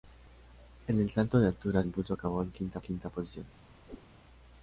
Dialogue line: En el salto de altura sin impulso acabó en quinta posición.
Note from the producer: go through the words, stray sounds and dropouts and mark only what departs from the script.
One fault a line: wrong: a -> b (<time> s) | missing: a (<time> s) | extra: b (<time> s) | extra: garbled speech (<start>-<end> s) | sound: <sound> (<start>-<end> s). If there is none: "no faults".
missing: sin (1.8 s)
extra: quinta (2.8 s)
sound: whoosh (3.9-4.1 s)